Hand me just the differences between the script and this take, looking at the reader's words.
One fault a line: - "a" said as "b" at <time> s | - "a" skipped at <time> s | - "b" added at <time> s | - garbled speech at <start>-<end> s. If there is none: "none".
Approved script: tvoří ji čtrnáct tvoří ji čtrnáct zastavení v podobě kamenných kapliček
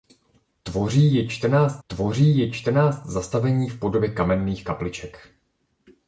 none